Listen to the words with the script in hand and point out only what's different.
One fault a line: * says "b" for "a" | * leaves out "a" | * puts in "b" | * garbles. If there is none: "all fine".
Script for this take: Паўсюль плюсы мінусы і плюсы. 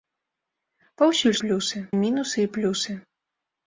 all fine